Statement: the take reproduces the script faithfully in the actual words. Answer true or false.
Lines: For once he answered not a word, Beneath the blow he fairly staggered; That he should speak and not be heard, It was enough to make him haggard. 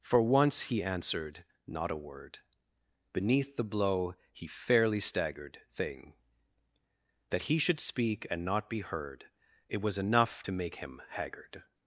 false